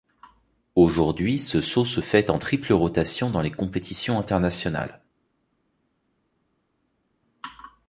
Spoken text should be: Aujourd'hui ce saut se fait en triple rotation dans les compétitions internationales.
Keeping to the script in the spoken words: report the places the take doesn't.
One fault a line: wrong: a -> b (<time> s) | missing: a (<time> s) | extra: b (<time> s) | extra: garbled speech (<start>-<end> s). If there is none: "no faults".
no faults